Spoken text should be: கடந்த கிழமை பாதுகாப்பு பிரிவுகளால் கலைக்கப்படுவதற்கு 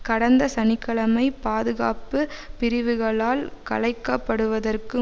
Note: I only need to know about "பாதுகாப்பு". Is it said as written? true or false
true